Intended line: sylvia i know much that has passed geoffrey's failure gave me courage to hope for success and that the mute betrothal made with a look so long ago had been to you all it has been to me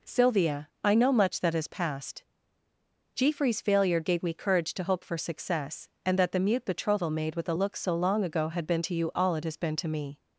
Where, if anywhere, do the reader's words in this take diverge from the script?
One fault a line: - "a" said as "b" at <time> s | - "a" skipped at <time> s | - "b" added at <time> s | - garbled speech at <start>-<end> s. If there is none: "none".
none